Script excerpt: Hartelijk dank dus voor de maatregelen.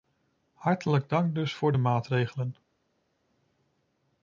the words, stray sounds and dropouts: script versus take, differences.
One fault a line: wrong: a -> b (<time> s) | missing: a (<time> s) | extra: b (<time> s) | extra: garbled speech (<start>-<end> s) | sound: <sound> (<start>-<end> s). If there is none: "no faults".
no faults